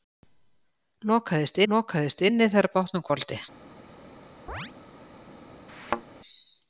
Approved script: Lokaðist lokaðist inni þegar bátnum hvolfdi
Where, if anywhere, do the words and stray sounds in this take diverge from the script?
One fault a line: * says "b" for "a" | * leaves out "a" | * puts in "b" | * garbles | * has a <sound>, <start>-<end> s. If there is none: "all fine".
* has a chirp, 4.5-4.7 s
* has a thud, 5.7-6.0 s